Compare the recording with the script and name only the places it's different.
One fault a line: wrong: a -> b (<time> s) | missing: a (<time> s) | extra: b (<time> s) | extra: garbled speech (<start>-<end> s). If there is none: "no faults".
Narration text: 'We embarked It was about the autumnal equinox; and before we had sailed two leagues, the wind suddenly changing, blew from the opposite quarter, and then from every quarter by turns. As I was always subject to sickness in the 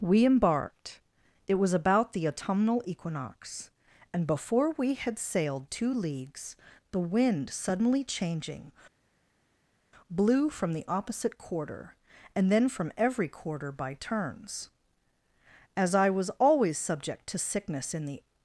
no faults